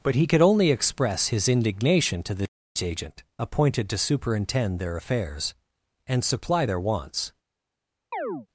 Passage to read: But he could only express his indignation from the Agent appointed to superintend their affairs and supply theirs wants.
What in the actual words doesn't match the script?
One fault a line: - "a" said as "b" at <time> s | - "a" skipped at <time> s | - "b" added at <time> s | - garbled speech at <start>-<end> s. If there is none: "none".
- "from" said as "to" at 2.2 s
- "theirs" said as "their" at 6.6 s